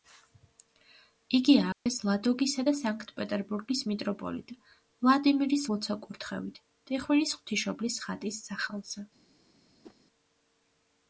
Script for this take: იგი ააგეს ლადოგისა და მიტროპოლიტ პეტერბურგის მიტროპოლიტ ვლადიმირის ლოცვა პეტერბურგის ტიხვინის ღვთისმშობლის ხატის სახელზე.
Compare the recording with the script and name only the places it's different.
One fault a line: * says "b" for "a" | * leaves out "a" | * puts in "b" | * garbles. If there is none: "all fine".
* says "სანქტ" for "მიტროპოლიტ"
* says "კურთხევით" for "პეტერბურგის"